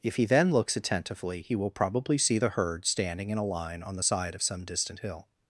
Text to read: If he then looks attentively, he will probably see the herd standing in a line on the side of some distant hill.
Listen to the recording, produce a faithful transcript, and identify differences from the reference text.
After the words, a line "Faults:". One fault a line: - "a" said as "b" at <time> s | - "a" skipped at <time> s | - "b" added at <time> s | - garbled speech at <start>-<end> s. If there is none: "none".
If he then looks attentively, he will probably see the herd standing in a line on the side of some distant hill.
Faults:
none